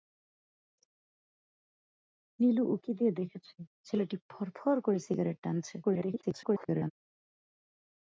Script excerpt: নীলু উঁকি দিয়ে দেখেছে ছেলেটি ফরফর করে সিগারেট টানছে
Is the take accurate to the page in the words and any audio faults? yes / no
no